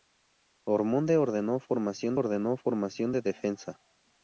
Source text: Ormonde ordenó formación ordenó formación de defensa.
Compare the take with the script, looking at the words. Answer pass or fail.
pass